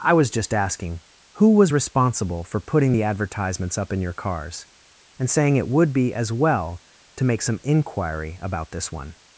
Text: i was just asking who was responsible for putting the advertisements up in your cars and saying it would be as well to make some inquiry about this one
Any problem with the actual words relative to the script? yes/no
no